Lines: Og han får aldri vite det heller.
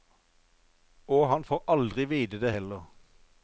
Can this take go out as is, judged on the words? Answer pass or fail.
pass